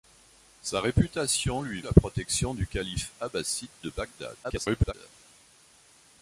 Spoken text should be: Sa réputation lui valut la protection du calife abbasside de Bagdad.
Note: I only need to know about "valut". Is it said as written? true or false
false